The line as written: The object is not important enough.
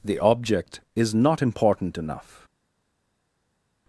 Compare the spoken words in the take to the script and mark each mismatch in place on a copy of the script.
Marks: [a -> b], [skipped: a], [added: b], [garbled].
The object is not important enough.